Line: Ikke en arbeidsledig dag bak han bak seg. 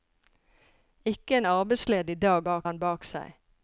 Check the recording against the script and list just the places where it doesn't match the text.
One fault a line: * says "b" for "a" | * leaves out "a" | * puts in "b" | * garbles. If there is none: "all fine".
all fine